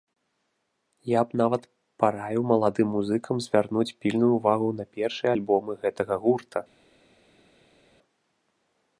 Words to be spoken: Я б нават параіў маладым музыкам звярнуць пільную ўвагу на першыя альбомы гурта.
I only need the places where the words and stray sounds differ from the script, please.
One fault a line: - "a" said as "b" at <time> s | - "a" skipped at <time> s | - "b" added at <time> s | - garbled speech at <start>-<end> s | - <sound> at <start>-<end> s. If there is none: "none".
- "гэтага" added at 5.9 s